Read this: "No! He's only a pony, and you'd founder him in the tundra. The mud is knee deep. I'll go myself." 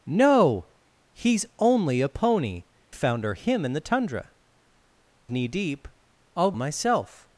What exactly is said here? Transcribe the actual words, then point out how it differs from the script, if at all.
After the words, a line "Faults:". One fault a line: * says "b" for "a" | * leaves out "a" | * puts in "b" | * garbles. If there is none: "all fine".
"No! He's only a pony, founder him in the tundra. Knee deep. I'll myself."
Faults:
* leaves out "and you'd"
* leaves out "The mud is"
* leaves out "go"